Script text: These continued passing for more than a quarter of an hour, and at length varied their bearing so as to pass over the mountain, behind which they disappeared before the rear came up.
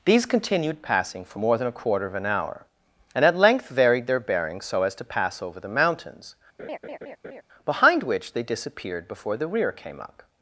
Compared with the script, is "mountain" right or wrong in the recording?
wrong